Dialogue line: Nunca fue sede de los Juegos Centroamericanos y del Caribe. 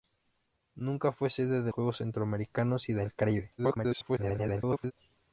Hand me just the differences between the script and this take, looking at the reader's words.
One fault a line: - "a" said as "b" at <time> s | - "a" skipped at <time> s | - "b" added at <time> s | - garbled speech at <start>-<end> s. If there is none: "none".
- "los" skipped at 1.7 s
- garbled speech at 3.6-4.9 s